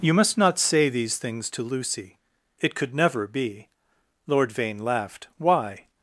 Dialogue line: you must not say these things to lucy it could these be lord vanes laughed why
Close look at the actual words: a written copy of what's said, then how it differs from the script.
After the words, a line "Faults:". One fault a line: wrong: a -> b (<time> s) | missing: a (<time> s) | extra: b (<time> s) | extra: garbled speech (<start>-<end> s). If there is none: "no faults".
you must not say these things to lucy it could never be lord vane laughed why
Faults:
wrong: these -> never (3.0 s)
wrong: vanes -> vane (4.5 s)